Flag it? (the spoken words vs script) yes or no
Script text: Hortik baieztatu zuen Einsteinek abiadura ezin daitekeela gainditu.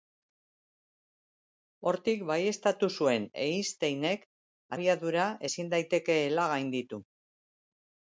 no